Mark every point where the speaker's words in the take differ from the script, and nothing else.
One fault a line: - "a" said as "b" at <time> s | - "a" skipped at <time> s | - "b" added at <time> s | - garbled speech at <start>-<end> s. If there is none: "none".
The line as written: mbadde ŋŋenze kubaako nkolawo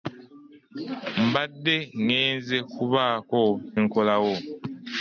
none